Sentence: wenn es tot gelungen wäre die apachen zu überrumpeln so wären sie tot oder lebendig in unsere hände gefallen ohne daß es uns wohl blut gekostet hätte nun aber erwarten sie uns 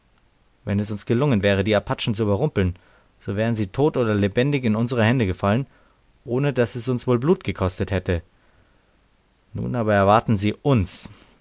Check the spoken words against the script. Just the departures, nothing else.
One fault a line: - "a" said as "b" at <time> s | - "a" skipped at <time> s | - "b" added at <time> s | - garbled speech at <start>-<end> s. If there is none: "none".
- "tot" said as "uns" at 0.9 s